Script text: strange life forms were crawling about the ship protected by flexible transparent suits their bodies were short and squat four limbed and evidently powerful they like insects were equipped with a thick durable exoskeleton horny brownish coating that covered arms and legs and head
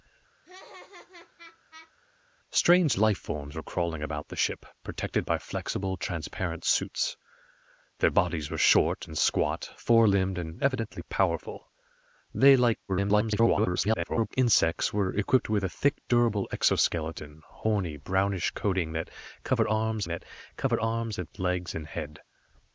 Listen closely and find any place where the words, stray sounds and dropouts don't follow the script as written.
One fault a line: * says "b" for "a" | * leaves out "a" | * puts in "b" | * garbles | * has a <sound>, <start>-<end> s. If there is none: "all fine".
* has a laugh, 0.4-1.9 s
* garbles
* puts in "that covered arms"